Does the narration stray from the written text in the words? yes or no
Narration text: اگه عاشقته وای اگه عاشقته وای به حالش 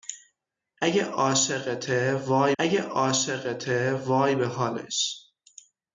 no